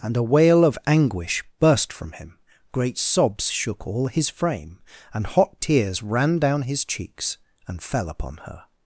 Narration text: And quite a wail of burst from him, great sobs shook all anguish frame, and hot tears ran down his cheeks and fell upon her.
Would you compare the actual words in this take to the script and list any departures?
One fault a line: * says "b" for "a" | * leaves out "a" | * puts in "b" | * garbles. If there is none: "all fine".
* leaves out "quite"
* puts in "anguish"
* says "his" for "anguish"